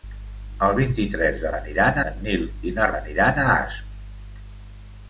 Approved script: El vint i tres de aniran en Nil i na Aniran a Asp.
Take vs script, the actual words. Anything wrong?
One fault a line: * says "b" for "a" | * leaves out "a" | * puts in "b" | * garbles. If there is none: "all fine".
all fine